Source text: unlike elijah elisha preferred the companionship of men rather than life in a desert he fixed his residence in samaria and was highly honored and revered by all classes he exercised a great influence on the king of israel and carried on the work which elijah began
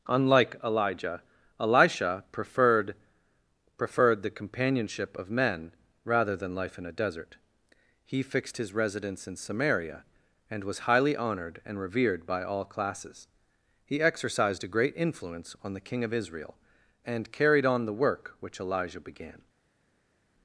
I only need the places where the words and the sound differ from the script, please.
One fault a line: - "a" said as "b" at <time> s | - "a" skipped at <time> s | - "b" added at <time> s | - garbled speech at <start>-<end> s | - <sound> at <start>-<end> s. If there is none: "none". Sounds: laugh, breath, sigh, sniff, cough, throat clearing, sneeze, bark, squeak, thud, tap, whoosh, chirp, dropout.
- "preferred" added at 3.8 s